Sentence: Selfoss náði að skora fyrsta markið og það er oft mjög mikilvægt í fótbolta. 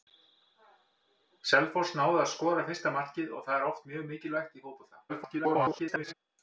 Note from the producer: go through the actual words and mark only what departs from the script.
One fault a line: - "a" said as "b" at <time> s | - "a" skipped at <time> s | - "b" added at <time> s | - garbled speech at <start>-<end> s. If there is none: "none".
- garbled speech at 5.1-6.1 s